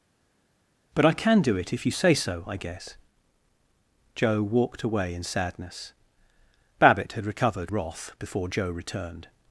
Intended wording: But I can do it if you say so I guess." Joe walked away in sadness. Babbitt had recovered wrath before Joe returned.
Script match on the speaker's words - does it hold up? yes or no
yes